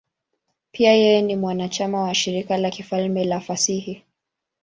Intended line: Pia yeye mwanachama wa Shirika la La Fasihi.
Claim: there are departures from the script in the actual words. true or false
true